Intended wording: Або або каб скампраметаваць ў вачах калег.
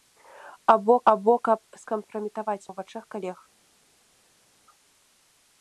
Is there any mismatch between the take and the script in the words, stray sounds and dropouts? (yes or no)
no